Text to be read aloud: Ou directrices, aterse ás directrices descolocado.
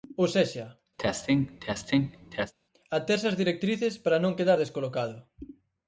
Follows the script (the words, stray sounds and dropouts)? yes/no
no